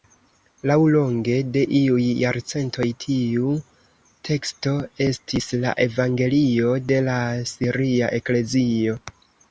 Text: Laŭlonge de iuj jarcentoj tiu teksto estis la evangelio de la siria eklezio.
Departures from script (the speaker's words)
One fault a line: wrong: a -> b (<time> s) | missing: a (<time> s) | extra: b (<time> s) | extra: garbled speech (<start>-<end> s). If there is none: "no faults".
no faults